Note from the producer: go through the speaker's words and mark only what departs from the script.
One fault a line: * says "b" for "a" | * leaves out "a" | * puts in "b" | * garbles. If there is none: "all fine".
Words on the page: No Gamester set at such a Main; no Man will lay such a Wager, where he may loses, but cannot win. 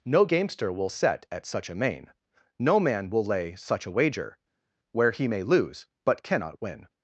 * puts in "will"
* says "lose" for "loses"